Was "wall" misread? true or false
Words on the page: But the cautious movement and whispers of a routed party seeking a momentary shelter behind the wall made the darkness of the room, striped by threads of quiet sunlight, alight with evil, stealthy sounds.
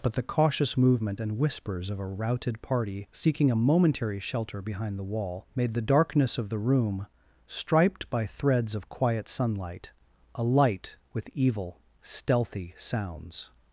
false